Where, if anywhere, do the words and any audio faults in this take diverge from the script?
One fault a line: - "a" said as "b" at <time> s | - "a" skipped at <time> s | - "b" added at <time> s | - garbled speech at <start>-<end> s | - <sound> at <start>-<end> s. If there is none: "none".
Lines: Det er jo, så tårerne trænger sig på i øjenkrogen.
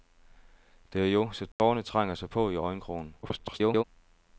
- dropout at 1.5-1.6 s
- garbled speech at 3.2-3.8 s